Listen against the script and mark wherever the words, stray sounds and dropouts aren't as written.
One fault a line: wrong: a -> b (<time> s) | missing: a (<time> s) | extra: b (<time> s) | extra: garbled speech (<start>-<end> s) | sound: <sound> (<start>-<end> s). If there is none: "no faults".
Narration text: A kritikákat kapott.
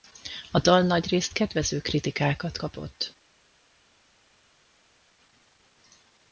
extra: dal nagyrészt kedvező (0.6 s)